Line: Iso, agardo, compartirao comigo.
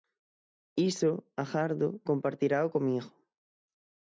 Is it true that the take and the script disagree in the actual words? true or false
false